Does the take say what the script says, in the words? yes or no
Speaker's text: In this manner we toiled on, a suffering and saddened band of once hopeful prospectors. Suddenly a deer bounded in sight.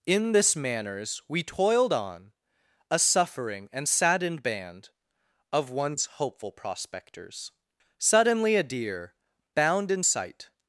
no